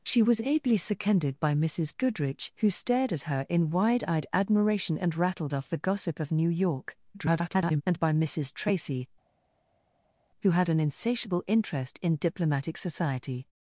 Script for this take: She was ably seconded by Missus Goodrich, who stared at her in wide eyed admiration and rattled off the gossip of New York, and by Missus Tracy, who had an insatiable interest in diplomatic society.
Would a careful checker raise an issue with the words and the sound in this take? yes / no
yes